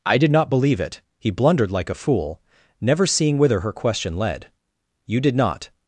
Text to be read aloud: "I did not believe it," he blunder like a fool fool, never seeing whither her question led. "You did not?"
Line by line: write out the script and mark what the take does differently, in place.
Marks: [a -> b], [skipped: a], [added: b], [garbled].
"I did not believe it," he [blunder -> blundered] like a fool [skipped: fool,] never seeing whither her question led. "You did not?"